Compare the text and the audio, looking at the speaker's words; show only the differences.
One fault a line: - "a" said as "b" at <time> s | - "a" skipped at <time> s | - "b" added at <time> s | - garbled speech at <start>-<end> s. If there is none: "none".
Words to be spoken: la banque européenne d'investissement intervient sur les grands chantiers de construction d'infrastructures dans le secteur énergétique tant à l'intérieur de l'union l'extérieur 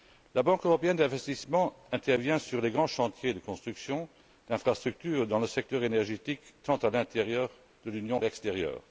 none